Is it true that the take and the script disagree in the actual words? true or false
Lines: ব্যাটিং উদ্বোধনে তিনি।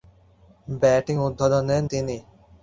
false